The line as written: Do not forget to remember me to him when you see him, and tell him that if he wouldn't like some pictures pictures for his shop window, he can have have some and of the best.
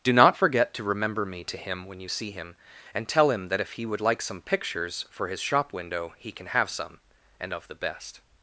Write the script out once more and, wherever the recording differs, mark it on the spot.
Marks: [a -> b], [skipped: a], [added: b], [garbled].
Do not forget to remember me to him when you see him, and tell him that if he [wouldn't -> would] like some pictures [skipped: pictures] for his shop window, he can have [skipped: have] some and of the best.